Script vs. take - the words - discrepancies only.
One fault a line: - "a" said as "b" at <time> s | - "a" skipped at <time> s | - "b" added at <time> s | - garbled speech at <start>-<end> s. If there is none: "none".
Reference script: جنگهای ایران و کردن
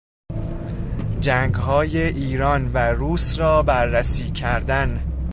- "روس را بررسی" added at 2.8 s